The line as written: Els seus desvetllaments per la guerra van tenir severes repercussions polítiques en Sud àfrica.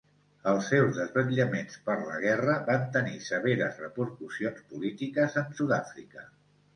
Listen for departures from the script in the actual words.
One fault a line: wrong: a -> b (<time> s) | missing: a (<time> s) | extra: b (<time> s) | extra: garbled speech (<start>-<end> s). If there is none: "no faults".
no faults